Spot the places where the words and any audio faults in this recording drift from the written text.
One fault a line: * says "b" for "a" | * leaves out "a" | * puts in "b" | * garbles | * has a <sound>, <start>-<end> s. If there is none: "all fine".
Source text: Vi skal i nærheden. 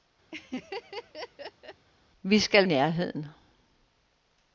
* has a laugh, 0.3-1.9 s